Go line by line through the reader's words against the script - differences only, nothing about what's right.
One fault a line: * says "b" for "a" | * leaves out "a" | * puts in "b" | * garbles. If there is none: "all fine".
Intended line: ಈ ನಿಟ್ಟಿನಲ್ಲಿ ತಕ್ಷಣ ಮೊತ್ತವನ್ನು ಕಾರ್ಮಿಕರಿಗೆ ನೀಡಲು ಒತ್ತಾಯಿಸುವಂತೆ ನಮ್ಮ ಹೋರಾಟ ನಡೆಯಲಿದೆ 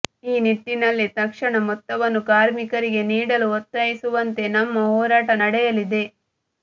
all fine